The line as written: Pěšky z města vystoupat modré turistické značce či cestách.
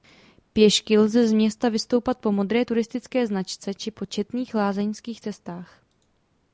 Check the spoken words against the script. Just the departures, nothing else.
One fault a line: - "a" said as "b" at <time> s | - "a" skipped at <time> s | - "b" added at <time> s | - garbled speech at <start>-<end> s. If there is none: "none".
- "lze" added at 1.0 s
- "po" added at 2.2 s
- "po četných lázeňských" added at 3.9 s